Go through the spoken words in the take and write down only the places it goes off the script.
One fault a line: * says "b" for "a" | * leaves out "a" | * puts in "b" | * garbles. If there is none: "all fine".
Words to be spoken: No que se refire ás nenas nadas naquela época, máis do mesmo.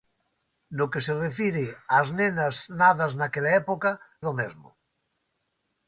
* leaves out "máis"